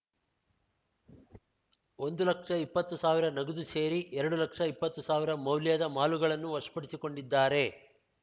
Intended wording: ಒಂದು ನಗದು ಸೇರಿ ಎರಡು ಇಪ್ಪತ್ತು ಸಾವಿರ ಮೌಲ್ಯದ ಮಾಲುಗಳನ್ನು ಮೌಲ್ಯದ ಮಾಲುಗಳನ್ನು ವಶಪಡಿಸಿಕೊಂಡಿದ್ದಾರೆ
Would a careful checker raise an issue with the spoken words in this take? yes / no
yes